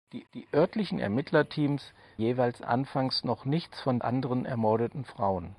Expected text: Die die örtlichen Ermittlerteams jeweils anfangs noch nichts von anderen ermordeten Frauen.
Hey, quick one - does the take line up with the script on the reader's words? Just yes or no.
yes